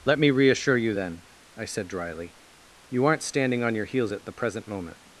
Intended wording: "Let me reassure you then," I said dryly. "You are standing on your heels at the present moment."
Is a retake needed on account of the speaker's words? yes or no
yes